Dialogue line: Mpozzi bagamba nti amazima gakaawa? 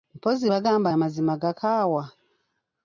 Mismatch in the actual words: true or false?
true